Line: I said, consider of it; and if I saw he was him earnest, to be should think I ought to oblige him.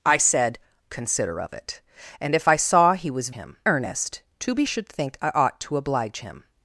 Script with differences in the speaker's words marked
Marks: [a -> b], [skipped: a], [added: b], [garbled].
I said, consider of it; and if I saw he was him earnest, to be should think I ought to oblige him.